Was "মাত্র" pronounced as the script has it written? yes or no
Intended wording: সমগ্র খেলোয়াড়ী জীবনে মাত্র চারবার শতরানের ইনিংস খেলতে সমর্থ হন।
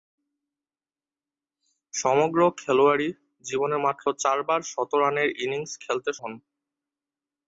yes